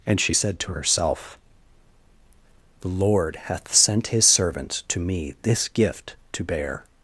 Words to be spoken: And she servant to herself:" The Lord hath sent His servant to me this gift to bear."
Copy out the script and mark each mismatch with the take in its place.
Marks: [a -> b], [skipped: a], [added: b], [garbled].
And she [servant -> said] to herself:" The Lord hath sent His servant to me this gift to bear."